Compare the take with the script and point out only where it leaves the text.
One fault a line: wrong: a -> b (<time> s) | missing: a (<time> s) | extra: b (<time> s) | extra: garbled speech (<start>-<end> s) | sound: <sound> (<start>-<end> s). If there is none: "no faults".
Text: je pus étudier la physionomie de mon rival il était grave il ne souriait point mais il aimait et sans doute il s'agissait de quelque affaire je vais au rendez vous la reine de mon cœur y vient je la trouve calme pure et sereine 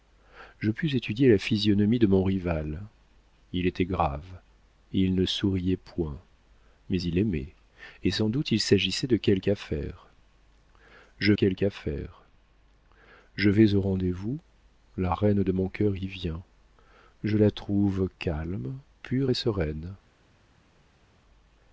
extra: quelque affaire je (11.3 s)